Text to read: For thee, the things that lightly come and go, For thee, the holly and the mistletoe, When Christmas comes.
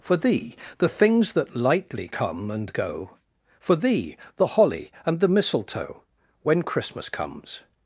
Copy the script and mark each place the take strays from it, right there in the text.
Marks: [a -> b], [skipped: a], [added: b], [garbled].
For thee, the things that lightly come and go, For thee, the holly and the mistletoe, When Christmas comes.